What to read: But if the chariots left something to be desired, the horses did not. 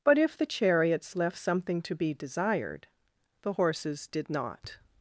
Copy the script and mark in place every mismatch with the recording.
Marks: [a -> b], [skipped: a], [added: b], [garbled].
But if the chariots left something to be desired, the horses did not.